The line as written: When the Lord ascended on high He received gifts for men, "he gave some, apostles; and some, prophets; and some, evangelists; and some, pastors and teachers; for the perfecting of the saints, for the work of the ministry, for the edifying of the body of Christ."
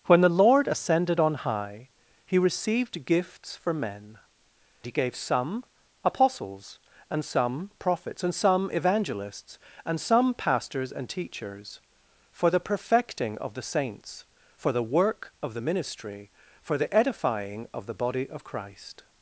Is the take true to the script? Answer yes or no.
yes